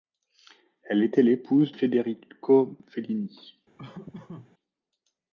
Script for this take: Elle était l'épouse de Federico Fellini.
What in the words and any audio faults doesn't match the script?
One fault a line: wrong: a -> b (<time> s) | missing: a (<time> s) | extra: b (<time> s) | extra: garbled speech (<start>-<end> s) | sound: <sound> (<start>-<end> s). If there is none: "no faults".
missing: de (1.8 s)
sound: laugh (3.8-4.5 s)